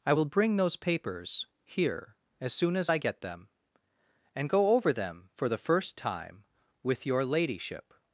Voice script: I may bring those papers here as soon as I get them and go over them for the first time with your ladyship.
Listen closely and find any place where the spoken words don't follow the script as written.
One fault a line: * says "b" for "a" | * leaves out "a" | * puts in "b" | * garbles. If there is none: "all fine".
* says "will" for "may"